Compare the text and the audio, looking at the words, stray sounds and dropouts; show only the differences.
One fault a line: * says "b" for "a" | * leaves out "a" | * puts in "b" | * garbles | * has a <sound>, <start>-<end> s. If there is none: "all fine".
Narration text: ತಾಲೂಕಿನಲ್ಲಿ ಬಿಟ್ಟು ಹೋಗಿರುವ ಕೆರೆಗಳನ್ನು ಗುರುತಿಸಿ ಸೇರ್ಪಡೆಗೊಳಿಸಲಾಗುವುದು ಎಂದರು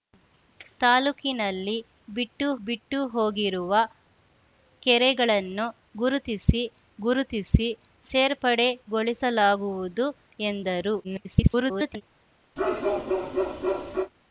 * puts in "ಬಿಟ್ಟು"
* puts in "ಗುರುತಿಸಿ"
* garbles
* has a bark, 12.6-14.1 s